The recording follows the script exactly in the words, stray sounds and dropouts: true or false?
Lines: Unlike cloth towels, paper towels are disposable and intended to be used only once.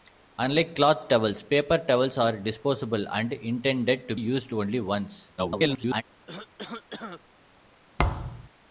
false